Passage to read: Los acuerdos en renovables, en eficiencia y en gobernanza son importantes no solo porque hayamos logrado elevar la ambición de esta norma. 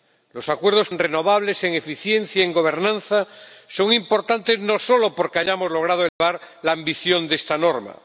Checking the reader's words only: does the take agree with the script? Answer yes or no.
yes